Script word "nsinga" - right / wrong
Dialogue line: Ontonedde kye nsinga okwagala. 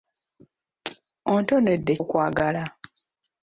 wrong